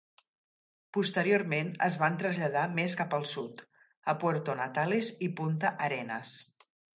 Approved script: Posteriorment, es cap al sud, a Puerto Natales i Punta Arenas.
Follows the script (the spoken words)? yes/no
no